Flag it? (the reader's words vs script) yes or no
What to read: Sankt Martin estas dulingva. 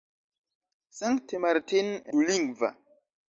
yes